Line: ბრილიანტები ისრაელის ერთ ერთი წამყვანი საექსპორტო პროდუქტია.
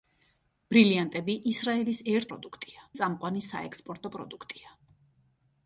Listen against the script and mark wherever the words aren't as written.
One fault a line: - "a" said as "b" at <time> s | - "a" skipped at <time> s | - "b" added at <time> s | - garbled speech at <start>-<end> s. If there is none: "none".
- "ერთი" said as "პროდუქტია" at 2.3 s